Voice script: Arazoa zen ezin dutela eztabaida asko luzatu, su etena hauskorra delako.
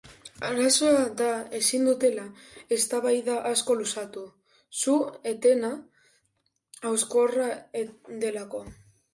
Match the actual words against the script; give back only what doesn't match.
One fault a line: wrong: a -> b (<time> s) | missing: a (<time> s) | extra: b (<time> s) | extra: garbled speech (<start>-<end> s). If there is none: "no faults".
wrong: zen -> da (1.2 s)